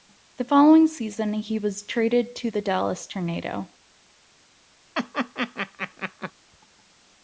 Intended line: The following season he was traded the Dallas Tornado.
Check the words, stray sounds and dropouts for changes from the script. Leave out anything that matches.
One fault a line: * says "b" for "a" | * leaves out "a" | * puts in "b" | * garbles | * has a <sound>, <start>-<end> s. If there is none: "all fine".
* puts in "to"
* has a laugh, 4.9-6.3 s